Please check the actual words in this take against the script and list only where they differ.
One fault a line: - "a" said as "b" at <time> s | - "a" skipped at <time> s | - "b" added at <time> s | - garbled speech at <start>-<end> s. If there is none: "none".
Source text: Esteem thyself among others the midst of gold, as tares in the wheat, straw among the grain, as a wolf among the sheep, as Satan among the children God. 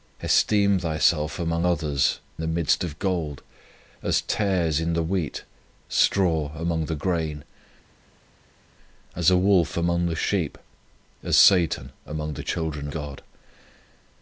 none